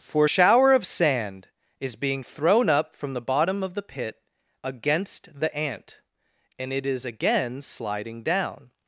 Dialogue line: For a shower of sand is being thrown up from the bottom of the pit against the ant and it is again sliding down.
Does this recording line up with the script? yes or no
no